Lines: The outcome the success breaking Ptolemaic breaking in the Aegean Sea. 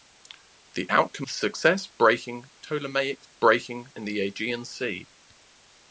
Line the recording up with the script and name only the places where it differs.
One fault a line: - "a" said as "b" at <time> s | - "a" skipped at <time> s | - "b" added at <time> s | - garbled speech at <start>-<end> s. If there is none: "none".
none